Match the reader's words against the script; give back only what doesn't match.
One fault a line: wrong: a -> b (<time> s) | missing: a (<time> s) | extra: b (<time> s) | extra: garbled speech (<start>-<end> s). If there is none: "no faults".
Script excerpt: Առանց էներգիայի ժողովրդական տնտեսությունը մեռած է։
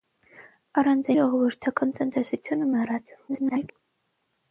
missing: էներգիայի (1.1 s)
extra: garbled speech (3.3-3.7 s)